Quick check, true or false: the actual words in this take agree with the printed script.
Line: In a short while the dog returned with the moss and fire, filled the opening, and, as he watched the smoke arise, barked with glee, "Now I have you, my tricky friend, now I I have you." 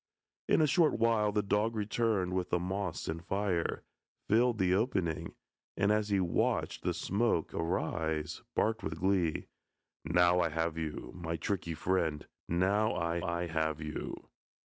true